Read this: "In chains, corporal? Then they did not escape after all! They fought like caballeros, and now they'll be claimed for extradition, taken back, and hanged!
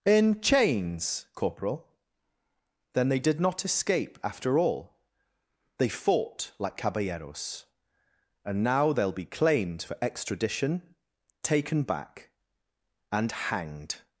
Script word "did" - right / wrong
right